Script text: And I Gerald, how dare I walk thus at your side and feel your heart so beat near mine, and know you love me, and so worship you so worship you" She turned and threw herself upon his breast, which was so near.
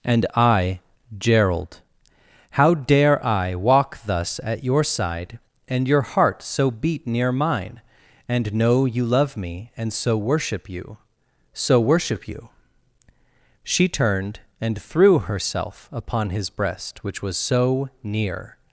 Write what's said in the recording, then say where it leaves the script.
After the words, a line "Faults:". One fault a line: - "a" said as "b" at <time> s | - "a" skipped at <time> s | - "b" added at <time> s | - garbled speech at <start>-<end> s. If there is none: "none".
And I Gerald, how dare I walk thus at your side and your heart so beat near mine, and know you love me, and so worship you so worship you" She turned and threw herself upon his breast, which was so near.
Faults:
- "feel" skipped at 5.9 s